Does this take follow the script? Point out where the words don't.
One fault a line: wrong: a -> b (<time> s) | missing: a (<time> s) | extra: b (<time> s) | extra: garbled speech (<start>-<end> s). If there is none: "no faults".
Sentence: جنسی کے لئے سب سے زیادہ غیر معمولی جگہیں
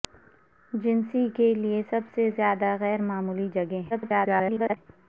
extra: garbled speech (3.9-4.8 s)